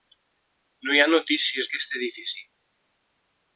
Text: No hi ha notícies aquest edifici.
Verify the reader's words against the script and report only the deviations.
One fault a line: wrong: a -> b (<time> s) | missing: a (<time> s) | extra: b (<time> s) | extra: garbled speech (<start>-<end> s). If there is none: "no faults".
no faults